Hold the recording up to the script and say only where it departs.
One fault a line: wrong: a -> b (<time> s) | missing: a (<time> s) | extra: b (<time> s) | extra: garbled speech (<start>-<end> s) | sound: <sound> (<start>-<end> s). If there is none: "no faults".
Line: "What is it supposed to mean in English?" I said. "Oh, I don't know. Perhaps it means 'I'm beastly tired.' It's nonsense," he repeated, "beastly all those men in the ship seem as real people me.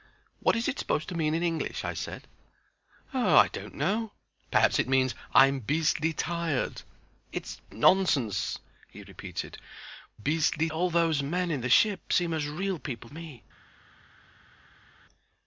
no faults